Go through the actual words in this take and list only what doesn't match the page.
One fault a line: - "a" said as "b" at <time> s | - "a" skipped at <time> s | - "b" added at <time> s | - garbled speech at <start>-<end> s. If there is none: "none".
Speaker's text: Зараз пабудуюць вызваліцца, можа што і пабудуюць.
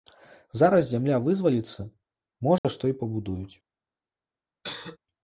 - "пабудуюць" said as "зямля" at 0.9 s